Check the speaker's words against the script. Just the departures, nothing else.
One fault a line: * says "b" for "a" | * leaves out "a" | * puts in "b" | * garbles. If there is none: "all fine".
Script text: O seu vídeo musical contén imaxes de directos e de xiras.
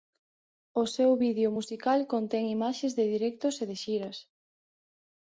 all fine